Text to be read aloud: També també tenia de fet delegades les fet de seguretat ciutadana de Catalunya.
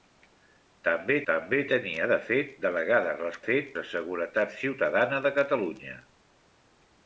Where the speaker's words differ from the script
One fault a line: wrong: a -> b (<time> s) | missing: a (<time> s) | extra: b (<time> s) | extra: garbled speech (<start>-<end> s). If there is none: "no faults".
no faults